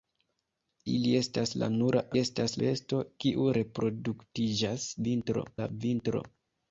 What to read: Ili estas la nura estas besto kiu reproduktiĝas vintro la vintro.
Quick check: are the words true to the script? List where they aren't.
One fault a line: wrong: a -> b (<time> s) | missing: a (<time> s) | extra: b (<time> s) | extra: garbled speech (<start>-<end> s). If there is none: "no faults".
no faults